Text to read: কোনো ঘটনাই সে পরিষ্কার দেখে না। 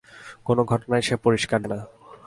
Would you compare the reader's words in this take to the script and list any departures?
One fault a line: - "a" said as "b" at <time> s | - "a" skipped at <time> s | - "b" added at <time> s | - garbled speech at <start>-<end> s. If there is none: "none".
- "দেখে" skipped at 1.6 s